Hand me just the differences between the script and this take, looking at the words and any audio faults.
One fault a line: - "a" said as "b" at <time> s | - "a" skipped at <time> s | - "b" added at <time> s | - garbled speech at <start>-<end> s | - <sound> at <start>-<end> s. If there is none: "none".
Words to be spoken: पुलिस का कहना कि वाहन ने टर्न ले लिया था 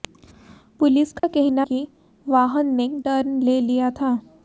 - dropout at 1.2-1.2 s